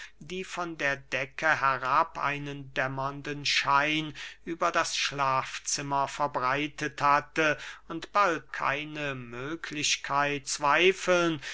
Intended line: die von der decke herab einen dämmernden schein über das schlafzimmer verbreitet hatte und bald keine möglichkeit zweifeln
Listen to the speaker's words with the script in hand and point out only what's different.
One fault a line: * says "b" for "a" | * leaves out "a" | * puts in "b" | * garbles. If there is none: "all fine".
all fine